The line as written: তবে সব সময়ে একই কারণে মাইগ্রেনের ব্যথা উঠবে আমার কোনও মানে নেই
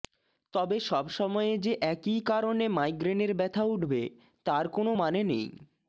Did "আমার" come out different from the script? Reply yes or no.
yes